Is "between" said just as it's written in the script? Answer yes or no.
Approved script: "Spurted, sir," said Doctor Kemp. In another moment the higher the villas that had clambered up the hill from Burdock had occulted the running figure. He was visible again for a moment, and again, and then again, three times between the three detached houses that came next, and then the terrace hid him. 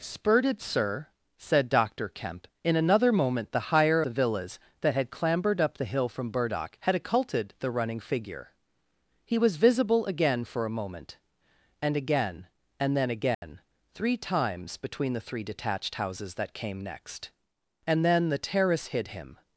yes